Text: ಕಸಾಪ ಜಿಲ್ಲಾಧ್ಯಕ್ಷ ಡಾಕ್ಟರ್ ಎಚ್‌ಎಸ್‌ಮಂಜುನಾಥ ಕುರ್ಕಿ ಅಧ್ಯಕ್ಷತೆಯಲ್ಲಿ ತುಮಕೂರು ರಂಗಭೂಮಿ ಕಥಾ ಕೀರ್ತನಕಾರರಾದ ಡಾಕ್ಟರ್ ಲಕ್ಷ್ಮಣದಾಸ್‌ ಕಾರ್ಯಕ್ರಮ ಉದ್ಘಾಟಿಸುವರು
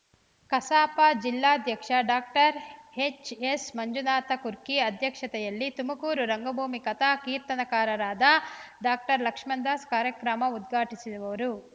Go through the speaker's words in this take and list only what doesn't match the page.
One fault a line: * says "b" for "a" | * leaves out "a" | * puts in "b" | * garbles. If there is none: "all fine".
all fine